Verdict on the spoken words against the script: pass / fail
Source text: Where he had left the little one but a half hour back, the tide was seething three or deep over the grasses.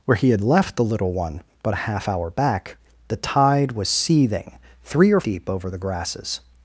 pass